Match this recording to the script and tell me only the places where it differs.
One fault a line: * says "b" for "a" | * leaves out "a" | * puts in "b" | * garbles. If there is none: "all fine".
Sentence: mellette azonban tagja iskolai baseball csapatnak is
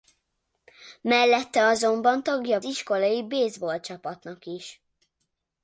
all fine